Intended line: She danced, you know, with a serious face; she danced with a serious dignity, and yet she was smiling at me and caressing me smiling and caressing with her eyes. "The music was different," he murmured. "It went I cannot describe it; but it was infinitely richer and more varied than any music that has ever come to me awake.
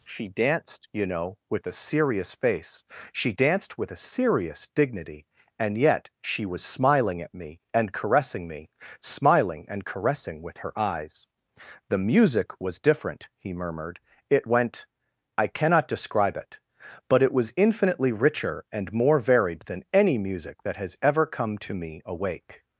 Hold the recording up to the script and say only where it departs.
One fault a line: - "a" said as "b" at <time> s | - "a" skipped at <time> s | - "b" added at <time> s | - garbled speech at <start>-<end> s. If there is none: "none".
none